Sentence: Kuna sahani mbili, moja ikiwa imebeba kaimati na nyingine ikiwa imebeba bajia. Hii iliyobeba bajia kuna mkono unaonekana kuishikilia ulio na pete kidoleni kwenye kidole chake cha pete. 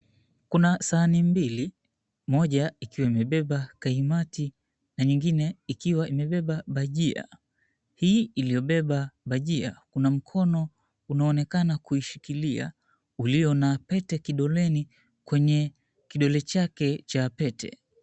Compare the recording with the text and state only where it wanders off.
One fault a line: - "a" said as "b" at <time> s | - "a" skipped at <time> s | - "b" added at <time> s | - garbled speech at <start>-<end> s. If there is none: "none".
none